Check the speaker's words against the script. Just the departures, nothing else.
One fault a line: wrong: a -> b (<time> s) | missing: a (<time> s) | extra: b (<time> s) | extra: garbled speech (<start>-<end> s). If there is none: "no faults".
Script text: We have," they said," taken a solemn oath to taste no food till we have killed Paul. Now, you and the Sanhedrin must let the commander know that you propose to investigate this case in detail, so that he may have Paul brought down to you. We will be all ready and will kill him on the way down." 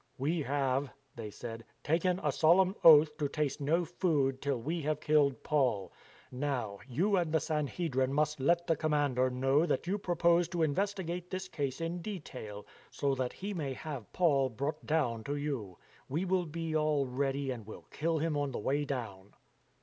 no faults